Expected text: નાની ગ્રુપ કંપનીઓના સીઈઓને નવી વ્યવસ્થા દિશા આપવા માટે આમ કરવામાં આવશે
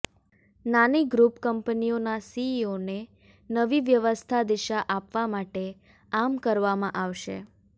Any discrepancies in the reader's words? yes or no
no